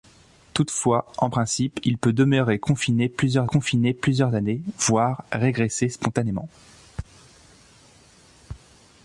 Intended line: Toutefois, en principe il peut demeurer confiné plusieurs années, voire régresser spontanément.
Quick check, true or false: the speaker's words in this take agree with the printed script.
false